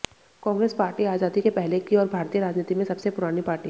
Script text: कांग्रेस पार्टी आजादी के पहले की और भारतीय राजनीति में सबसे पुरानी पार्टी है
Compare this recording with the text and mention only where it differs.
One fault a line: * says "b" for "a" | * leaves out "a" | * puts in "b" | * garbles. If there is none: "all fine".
all fine